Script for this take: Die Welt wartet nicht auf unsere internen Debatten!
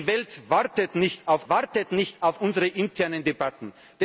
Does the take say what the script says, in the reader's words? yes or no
no